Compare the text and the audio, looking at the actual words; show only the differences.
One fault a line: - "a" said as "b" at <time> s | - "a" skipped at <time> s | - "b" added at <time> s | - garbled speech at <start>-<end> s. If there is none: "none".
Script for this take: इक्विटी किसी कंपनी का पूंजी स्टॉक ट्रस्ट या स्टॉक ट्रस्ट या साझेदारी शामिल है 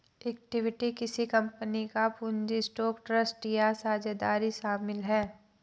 - "स्टॉक ट्रस्ट या" skipped at 3.7 s